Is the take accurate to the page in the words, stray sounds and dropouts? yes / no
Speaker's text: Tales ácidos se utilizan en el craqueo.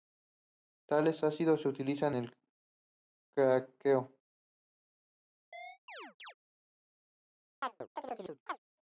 no